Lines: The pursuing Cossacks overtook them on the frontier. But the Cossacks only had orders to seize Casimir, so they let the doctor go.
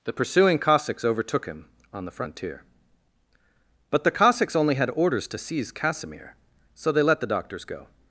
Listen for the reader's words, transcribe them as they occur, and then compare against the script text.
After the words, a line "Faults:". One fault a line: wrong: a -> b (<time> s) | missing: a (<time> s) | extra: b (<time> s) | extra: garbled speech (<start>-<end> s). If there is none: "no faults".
The pursuing Cossacks overtook him on the frontier. But the Cossacks only had orders to seize Casimir, so they let the doctors go.
Faults:
wrong: them -> him (1.4 s)
wrong: doctor -> doctors (7.3 s)